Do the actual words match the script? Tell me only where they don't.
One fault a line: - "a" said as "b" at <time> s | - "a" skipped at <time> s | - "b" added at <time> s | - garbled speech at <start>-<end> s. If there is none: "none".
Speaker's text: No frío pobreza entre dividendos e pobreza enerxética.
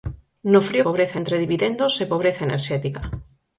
none